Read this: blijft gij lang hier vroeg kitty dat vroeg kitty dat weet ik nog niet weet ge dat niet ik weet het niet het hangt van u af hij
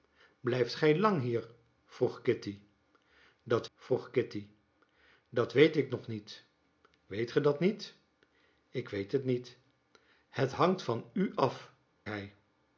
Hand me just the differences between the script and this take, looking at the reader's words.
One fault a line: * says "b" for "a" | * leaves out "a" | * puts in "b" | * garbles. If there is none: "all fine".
all fine